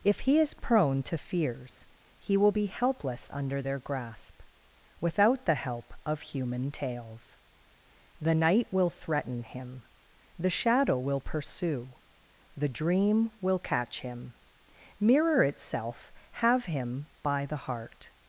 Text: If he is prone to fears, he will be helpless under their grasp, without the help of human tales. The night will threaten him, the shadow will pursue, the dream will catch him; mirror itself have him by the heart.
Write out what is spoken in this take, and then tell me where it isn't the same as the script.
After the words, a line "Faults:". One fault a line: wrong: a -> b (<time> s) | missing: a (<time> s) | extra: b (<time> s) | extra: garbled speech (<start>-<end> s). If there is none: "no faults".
If he is prone to fears, he will be helpless under their grasp, without the help of human tales. The night will threaten him, the shadow will pursue, the dream will catch him; mirror itself have him by the heart.
Faults:
no faults